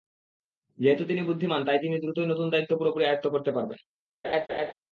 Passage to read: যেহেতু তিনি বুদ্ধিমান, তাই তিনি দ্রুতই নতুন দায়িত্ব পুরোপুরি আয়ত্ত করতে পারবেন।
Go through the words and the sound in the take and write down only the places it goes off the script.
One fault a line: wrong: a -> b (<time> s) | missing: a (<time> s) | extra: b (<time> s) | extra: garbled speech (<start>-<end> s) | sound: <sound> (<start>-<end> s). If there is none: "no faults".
sound: laugh (4.2-4.7 s)